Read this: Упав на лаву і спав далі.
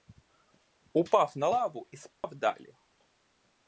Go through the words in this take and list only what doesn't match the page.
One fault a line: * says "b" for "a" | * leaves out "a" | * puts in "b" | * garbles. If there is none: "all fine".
all fine